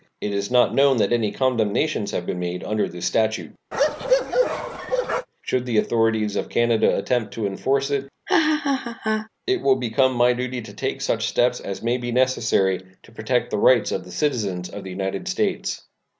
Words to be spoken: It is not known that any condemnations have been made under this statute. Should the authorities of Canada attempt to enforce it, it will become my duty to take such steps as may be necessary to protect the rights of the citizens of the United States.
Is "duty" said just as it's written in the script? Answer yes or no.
yes